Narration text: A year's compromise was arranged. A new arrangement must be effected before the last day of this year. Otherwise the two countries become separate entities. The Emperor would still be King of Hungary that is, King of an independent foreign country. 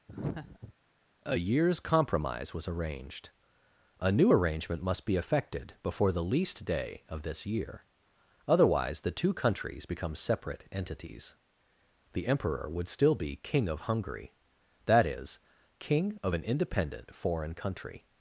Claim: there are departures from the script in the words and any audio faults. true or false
true